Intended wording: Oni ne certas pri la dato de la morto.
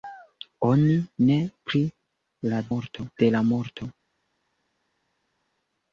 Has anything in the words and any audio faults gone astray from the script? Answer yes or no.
yes